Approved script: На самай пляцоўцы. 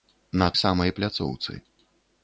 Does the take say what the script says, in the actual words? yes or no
yes